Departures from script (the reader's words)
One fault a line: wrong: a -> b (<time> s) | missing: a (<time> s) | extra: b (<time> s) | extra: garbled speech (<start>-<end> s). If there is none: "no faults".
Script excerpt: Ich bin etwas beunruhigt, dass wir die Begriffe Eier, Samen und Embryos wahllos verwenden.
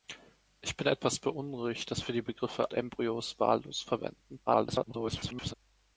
missing: Eier Samen und (2.7 s)
extra: garbled speech (4.5-5.5 s)